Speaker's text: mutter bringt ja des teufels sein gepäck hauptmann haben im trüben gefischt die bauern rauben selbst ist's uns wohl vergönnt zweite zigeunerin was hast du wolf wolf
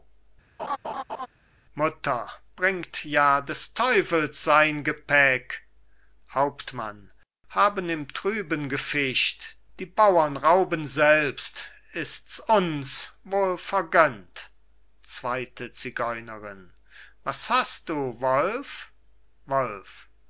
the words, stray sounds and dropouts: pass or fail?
fail